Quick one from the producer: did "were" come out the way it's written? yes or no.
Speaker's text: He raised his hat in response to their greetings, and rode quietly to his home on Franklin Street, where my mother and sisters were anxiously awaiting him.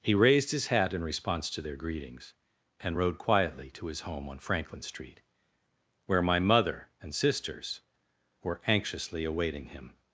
yes